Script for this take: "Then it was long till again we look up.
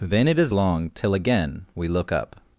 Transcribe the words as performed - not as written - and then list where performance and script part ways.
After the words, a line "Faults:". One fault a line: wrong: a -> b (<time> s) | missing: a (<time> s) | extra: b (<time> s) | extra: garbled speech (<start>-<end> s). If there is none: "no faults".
"Then it is long till again we look up.
Faults:
wrong: was -> is (0.4 s)